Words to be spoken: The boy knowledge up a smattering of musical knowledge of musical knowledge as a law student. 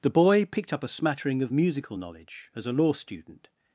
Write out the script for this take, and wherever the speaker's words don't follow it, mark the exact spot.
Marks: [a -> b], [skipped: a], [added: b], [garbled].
The boy [knowledge -> picked] up a smattering of musical knowledge [skipped: of musical knowledge] as a law student.